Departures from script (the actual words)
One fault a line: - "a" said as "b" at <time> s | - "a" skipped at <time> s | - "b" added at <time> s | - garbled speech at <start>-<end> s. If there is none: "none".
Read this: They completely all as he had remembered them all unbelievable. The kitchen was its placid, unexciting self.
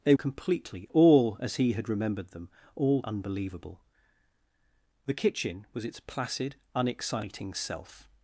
none